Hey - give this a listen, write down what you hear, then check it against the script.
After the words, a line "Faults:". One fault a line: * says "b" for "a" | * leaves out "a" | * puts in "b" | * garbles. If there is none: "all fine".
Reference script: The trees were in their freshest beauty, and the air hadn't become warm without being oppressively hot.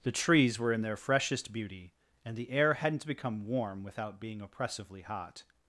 The trees were in their freshest beauty, and the air hadn't become warm without being oppressively hot.
Faults:
all fine